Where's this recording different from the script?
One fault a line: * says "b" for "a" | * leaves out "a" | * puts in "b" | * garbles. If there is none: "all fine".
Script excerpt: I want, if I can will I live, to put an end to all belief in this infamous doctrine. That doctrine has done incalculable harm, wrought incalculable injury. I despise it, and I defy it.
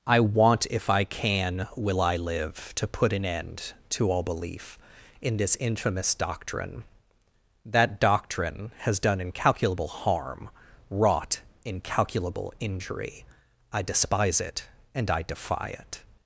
all fine